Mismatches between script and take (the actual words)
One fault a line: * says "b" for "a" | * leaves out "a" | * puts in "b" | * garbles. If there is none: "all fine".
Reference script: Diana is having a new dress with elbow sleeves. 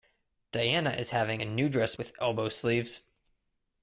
all fine